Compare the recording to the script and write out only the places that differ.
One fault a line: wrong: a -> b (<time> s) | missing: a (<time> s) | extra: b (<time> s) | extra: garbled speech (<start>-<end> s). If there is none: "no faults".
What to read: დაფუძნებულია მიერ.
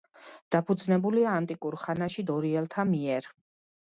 extra: ანტიკურ ხანაში დორიელთა (1.4 s)